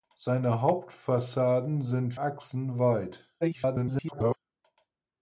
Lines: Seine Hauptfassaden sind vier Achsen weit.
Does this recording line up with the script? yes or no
no